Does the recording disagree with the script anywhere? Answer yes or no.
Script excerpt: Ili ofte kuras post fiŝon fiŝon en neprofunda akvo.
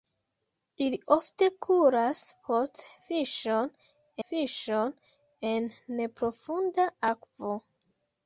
no